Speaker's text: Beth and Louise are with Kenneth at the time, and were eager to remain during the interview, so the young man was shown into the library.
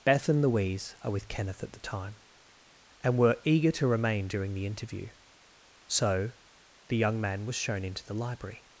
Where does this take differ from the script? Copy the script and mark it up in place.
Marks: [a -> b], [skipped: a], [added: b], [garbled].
Beth and Louise are with Kenneth at the time, and were eager to remain during the interview, so the young man was shown into the library.